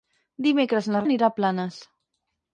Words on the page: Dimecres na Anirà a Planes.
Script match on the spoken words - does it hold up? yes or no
yes